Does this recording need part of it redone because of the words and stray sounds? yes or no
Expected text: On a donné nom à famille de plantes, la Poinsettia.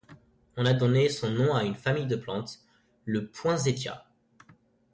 yes